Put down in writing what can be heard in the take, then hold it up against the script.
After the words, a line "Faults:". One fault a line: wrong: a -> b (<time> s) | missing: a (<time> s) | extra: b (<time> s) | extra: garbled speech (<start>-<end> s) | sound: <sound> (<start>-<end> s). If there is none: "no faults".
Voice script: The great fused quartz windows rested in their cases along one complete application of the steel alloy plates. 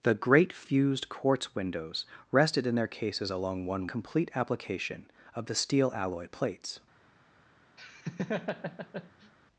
The great fused quartz windows rested in their cases along one complete application of the steel alloy plates.
Faults:
sound: laugh (7.8-9.3 s)